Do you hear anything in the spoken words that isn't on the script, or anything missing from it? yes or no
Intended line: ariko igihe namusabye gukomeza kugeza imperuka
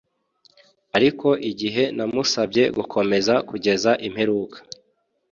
no